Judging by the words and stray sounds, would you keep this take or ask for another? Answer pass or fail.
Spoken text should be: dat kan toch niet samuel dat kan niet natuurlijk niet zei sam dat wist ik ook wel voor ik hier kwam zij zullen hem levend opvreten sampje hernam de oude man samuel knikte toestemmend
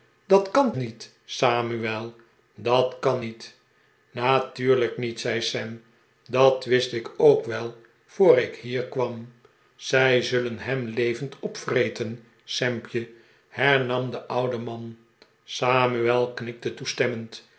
fail